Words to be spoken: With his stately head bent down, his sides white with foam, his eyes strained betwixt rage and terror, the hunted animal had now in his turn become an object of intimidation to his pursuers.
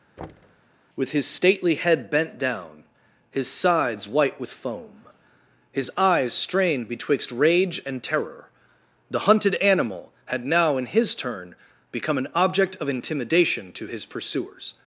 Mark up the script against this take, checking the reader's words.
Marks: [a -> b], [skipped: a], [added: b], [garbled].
With his stately head bent down, his sides white with foam, his eyes strained betwixt rage and terror, the hunted animal had now in his turn become an object of intimidation to his pursuers.